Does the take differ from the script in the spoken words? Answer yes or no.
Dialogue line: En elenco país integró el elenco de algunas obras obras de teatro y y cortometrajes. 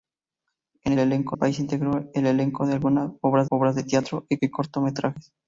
no